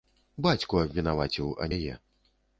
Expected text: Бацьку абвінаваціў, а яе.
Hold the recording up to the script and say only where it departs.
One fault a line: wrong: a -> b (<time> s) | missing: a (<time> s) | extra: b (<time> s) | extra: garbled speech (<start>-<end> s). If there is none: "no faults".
no faults